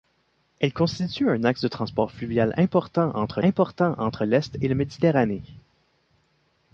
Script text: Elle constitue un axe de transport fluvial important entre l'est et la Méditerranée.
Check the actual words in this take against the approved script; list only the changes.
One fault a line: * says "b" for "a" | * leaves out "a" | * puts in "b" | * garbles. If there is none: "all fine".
* puts in "important entre"